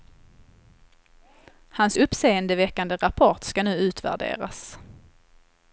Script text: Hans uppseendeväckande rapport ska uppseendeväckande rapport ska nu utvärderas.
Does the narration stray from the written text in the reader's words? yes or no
yes